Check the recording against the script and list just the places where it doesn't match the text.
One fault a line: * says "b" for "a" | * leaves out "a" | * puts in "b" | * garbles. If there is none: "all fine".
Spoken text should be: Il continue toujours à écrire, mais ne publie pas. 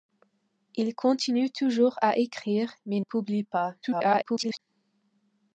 * leaves out "ne"
* garbles